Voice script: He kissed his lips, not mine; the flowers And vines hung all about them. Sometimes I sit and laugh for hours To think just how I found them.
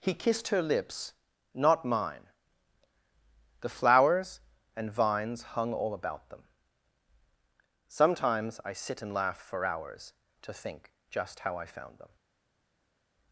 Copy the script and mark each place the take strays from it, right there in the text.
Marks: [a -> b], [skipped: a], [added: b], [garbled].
He kissed [his -> her] lips, not mine; the flowers And vines hung all about them. Sometimes I sit and laugh for hours To think just how I found them.